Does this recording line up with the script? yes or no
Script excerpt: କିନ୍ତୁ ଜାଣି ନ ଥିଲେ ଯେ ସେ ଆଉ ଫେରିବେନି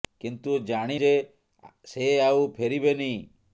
no